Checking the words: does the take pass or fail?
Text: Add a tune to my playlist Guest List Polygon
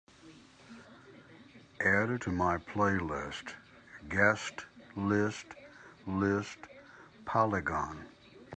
fail